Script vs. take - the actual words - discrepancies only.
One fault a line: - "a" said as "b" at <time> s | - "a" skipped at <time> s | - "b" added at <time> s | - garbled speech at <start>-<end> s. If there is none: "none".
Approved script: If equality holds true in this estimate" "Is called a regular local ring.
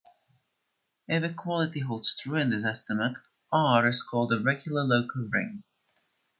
- "R" added at 3.5 s